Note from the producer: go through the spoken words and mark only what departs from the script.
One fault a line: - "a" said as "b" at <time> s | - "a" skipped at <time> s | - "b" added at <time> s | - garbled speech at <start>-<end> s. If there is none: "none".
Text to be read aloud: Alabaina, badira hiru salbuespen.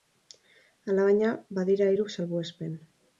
none